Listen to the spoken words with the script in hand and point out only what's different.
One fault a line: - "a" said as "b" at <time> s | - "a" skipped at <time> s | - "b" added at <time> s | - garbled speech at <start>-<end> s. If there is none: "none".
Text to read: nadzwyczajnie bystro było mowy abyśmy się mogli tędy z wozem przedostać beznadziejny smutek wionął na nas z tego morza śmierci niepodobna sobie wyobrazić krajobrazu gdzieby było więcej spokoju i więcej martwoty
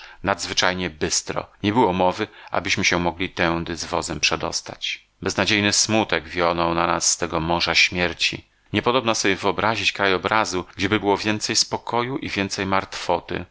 - "nie" added at 1.6 s